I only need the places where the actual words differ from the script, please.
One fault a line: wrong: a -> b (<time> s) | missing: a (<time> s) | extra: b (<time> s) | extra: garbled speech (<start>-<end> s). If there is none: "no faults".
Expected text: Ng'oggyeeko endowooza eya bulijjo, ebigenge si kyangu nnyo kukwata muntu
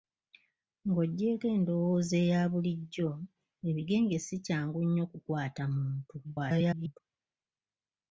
extra: garbled speech (6.2-7.0 s)